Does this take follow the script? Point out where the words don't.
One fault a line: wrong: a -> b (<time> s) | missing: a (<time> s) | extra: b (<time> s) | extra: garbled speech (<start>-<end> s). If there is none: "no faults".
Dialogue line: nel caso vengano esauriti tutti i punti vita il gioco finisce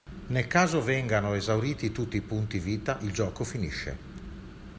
no faults